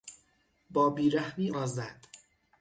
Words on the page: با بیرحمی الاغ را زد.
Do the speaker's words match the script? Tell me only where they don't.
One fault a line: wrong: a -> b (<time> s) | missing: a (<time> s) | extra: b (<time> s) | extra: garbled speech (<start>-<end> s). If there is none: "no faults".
missing: الاغ (1.5 s)